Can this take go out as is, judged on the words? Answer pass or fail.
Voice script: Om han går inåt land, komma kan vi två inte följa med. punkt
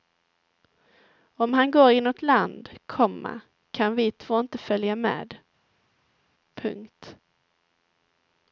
pass